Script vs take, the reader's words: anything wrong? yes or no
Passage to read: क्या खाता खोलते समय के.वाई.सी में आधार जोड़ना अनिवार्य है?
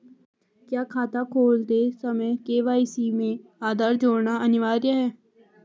no